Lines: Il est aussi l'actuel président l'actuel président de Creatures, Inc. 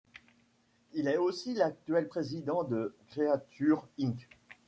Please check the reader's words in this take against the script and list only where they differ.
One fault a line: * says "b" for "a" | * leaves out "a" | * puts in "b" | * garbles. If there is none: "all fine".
* leaves out "l'actuel président"